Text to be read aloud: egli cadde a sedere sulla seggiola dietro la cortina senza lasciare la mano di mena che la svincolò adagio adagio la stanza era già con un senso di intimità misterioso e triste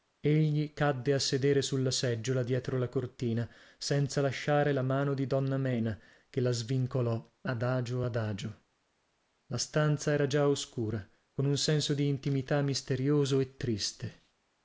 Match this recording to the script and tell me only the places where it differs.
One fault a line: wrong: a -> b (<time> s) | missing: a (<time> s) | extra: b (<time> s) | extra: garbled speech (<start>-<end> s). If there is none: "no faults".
extra: donna (5.3 s)
extra: oscura (10.5 s)